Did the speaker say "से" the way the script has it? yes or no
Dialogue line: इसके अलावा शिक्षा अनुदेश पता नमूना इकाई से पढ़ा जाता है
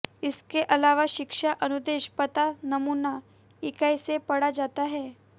yes